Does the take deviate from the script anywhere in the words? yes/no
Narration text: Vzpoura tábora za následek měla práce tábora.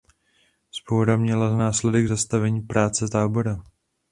yes